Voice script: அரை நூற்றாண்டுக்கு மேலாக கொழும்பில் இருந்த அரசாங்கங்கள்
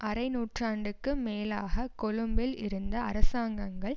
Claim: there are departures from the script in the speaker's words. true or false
false